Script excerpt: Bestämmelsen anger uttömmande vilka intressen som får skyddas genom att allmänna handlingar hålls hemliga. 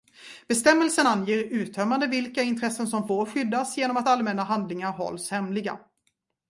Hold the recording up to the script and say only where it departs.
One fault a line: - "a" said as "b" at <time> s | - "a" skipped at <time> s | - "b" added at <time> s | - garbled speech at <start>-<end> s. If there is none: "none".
none